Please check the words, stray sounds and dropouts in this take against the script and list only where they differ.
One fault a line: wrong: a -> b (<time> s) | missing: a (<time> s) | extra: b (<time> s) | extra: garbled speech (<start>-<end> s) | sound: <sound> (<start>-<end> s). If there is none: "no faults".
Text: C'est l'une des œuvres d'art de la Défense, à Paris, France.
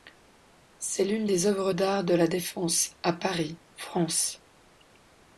no faults